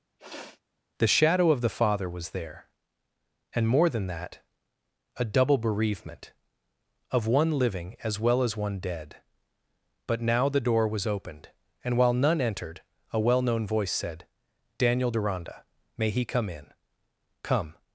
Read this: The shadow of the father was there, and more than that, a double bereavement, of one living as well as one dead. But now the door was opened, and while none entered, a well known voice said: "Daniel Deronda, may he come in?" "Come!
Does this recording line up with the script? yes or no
yes